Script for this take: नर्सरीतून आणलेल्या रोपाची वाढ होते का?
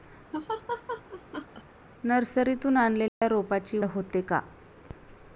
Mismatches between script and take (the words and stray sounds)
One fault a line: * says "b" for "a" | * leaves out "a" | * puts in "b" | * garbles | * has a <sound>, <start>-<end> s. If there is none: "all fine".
* has a laugh, 0.3-1.6 s
* has a dropout, 3.1-3.2 s
* leaves out "वाढ"